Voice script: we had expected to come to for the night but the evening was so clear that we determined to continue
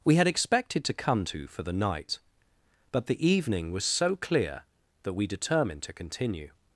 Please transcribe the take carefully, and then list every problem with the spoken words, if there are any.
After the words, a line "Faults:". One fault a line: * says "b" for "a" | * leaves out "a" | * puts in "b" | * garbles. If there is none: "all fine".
we had expected to come to for the night but the evening was so clear that we determined to continue
Faults:
all fine